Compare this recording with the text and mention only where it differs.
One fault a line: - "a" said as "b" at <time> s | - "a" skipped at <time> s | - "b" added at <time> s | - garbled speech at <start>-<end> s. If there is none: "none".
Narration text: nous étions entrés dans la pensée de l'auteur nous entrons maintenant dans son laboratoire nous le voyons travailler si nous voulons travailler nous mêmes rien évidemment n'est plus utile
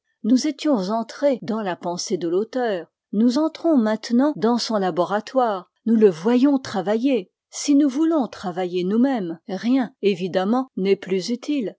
none